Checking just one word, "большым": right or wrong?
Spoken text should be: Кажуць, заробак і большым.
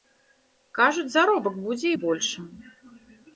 right